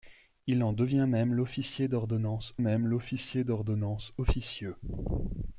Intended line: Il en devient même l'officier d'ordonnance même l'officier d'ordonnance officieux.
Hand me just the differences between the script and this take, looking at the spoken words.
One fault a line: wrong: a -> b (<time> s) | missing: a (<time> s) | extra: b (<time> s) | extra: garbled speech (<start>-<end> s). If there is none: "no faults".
no faults